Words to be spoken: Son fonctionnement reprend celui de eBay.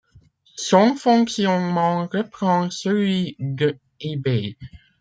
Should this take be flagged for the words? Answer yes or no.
no